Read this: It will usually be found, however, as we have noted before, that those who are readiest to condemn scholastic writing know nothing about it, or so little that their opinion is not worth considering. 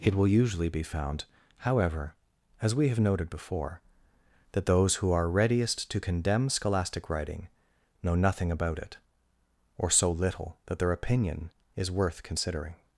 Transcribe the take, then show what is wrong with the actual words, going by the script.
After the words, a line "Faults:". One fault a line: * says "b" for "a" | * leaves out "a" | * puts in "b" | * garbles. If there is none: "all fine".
It will usually be found, however, as we have noted before, that those who are readiest to condemn scholastic writing know nothing about it, or so little that their opinion is worth considering.
Faults:
* leaves out "not"